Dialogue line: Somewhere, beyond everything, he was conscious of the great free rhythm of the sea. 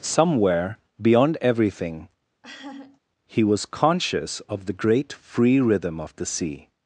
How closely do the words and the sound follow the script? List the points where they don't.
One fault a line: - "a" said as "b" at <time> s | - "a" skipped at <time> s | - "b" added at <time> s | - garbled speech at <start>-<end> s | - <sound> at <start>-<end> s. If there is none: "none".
- laugh at 2.4-3.0 s